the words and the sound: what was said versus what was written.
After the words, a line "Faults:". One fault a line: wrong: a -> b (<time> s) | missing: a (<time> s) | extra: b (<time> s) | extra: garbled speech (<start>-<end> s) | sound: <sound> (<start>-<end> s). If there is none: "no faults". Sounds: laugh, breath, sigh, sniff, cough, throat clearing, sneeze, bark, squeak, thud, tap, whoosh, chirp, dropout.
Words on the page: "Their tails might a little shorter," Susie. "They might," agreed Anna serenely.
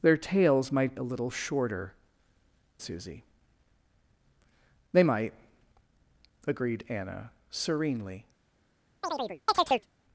"Their tails might a little shorter," Susie. "They might," agreed Anna serenely.
Faults:
sound: chirp (9.0-9.9 s)